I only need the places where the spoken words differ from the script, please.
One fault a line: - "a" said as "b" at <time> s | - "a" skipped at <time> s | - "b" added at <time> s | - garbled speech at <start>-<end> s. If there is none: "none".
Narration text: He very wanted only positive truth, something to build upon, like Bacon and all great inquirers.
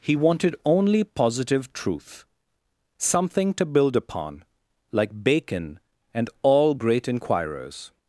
- "very" skipped at 0.1 s